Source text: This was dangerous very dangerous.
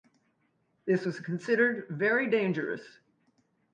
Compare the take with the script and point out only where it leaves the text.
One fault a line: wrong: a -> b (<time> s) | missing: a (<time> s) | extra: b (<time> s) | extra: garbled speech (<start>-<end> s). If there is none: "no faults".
wrong: dangerous -> considered (1.2 s)